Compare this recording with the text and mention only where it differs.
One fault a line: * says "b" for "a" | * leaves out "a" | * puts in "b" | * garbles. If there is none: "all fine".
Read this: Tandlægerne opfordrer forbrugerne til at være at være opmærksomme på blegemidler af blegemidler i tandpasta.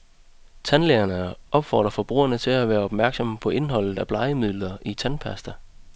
* leaves out "at være"
* says "indholdet" for "blegemidler"